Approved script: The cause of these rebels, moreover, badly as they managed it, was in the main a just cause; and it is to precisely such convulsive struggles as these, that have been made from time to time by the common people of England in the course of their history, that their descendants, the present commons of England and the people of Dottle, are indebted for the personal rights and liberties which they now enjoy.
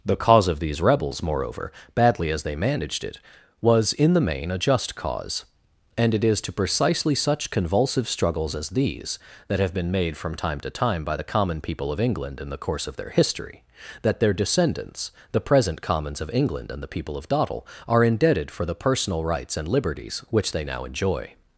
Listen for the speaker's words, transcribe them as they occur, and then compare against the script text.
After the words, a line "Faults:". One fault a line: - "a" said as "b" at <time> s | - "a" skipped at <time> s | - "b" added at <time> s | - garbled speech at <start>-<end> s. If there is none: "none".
The cause of these rebels, moreover, badly as they managed it, was in the main a just cause; and it is to precisely such convulsive struggles as these, that have been made from time to time by the common people of England in the course of their history, that their descendants, the present commons of England and the people of Dottle, are indebted for the personal rights and liberties which they now enjoy.
Faults:
none